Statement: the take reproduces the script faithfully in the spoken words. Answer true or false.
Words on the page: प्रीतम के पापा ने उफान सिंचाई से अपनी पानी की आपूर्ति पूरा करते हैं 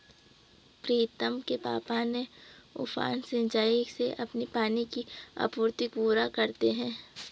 true